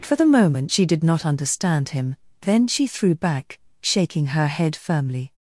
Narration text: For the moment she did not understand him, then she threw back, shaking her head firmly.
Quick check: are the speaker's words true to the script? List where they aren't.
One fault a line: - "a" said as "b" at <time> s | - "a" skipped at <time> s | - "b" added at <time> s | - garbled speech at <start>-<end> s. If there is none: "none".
none